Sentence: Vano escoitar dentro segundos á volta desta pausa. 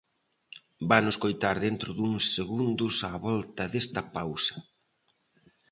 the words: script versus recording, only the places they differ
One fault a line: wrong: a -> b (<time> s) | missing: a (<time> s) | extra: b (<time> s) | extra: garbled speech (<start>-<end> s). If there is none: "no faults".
extra: duns (2.0 s)